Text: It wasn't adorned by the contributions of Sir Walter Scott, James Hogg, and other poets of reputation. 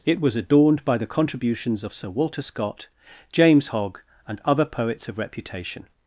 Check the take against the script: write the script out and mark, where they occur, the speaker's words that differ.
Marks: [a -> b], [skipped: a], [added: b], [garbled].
It [wasn't -> was] adorned by the contributions of Sir Walter Scott, James Hogg, and other poets of reputation.